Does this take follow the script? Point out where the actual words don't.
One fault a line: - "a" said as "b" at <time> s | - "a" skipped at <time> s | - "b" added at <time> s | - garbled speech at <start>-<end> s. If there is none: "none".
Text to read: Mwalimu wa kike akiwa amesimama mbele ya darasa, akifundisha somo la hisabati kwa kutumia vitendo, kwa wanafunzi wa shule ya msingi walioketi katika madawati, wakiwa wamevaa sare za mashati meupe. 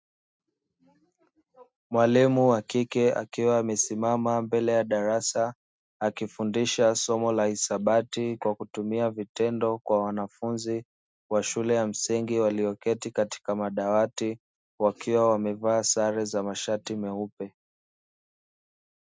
none